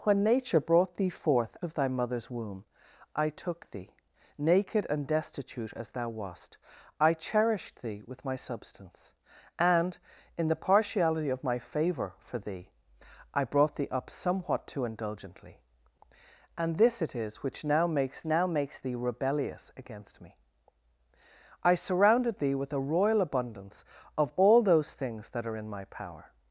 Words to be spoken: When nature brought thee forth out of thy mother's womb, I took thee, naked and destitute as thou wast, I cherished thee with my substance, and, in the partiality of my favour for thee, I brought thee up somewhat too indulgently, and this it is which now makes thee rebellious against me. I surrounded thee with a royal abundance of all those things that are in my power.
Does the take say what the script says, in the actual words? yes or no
no